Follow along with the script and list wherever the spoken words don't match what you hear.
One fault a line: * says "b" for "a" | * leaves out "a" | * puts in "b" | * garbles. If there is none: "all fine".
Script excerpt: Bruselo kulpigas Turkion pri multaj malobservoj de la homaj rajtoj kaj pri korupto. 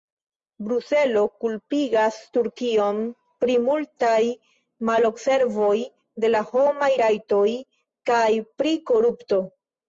all fine